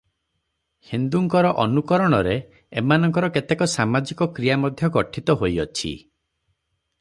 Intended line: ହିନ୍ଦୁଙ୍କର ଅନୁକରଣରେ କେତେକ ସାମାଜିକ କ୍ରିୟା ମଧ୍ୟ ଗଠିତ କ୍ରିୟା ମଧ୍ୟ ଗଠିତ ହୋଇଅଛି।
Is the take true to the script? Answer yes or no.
no